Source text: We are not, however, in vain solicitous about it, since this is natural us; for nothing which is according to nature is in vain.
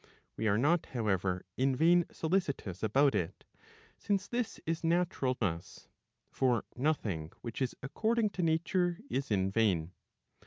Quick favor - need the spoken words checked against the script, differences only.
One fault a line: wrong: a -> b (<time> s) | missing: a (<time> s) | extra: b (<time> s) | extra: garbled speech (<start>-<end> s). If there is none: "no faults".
no faults